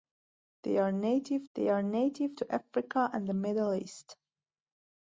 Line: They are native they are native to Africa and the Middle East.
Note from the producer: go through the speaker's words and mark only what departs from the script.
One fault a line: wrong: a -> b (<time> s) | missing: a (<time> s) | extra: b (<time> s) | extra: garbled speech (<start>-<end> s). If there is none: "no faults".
no faults